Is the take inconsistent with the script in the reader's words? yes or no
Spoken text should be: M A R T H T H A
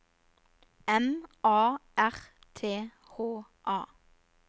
yes